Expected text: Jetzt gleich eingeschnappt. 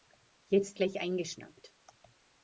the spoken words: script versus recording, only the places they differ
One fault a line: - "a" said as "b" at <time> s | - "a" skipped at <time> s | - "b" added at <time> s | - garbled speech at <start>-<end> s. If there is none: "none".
none